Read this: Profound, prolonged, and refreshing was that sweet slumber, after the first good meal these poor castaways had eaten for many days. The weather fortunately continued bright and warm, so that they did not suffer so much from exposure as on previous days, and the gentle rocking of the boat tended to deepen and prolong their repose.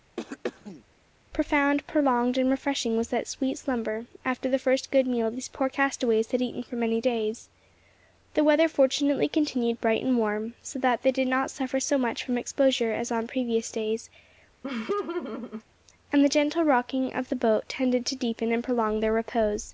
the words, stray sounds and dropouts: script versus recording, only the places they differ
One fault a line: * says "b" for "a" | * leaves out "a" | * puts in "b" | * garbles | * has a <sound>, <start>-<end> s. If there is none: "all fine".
* has a throat clearing, 0.2-0.8 s
* has a laugh, 14.6-15.6 s